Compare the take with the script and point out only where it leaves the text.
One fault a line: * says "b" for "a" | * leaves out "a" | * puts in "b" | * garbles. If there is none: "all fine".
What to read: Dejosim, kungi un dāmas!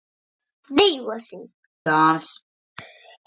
* leaves out "kungi un"